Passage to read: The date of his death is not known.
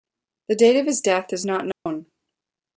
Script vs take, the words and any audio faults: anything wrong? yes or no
yes